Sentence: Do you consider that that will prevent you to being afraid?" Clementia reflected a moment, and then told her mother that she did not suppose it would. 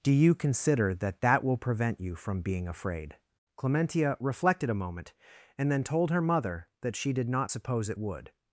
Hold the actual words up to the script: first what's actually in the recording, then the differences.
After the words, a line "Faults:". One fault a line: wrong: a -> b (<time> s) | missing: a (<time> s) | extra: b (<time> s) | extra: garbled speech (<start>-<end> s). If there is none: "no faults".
Do you consider that that will prevent you from being afraid?" Clementia reflected a moment, and then told her mother that she did not suppose it would.
Faults:
wrong: to -> from (2.1 s)